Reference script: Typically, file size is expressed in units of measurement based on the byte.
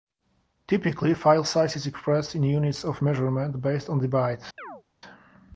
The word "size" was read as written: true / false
true